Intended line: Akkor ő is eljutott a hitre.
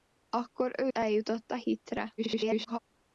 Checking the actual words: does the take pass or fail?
fail